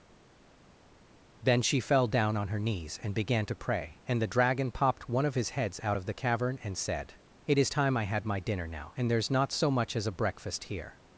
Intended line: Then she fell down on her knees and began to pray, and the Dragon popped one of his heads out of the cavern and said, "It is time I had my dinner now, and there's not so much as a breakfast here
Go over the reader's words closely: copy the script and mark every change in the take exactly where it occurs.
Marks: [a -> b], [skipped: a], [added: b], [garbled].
Then she fell down on her knees and began to pray, and the Dragon popped one of his heads out of the cavern and said, "It is time I had my dinner now, and there's not so much as a breakfast here